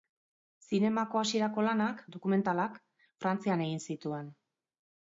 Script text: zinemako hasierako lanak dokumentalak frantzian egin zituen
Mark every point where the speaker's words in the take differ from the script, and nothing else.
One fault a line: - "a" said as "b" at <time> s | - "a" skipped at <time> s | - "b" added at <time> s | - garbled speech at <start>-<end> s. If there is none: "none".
none